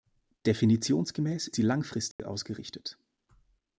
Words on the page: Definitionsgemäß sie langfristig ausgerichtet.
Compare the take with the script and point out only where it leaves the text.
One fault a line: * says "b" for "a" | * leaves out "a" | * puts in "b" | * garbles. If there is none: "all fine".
all fine